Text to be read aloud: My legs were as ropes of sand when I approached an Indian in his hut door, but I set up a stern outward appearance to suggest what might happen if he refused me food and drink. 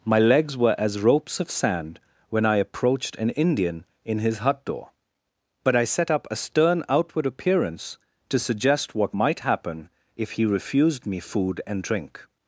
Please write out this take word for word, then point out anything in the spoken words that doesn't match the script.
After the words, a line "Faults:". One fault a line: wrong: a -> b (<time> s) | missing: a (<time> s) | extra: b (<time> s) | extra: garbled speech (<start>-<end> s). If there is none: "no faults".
My legs were as ropes of sand when I approached an Indian in his hut door, but I set up a stern outward appearance to suggest what might happen if he refused me food and drink.
Faults:
no faults